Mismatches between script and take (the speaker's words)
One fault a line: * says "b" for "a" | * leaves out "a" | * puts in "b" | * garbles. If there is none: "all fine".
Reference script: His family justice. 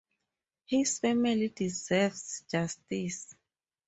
* puts in "deserves"